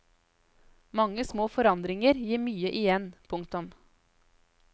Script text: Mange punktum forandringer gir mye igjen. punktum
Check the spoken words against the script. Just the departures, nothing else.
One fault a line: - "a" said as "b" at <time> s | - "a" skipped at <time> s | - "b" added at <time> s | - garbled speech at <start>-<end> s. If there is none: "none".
- "punktum" said as "små" at 1.3 s